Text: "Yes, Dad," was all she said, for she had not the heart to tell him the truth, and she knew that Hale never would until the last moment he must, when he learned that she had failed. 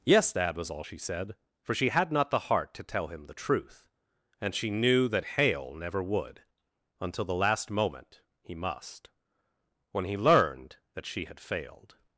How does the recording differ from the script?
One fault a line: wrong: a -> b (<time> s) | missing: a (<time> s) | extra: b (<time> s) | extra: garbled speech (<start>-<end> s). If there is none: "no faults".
no faults